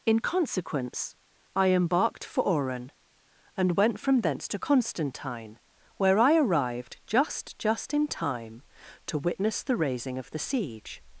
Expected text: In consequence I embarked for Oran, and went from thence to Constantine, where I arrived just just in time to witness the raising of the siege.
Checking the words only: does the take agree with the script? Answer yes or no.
yes